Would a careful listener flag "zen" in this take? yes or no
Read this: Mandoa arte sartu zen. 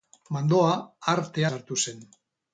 no